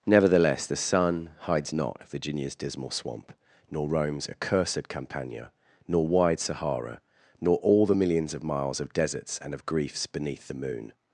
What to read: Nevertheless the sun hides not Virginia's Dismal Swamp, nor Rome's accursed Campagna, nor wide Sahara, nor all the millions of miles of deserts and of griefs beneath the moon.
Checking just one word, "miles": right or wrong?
right